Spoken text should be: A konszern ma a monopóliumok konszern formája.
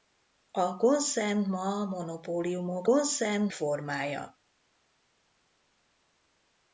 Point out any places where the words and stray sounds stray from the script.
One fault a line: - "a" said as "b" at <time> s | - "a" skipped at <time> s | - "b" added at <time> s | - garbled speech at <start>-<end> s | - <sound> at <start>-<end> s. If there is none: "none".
none